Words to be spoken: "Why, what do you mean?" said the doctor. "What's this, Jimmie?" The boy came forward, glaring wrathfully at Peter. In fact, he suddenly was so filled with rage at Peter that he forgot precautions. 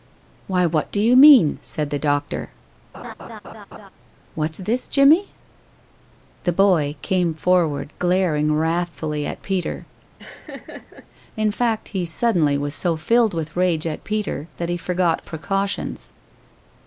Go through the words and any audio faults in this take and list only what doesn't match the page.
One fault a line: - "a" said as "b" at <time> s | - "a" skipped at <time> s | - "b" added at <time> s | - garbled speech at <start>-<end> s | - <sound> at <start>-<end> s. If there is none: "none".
- laugh at 2.9-3.9 s
- laugh at 10.2-11.1 s